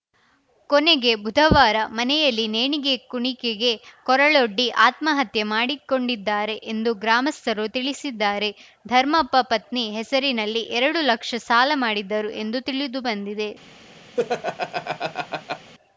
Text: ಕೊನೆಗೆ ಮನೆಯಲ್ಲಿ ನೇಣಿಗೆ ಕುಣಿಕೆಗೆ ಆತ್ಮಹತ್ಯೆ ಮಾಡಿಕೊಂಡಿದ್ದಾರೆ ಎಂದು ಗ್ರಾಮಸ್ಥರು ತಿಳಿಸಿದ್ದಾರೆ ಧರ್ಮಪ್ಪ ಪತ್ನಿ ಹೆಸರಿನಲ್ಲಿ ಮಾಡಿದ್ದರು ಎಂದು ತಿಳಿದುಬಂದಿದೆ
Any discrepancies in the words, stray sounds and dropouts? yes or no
yes